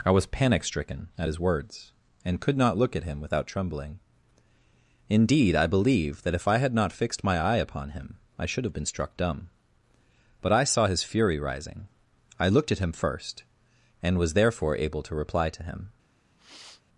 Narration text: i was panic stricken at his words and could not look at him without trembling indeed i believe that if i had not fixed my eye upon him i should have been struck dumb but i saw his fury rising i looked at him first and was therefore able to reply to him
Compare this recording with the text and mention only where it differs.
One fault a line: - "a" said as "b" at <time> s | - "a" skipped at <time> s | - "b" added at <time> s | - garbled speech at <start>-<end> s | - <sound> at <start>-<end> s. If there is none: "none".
- sniff at 16.4-16.8 s